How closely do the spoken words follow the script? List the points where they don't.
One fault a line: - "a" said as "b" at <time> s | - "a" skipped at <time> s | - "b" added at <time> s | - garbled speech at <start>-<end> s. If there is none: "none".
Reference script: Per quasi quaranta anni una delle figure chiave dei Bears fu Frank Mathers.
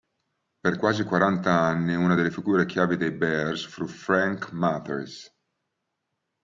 none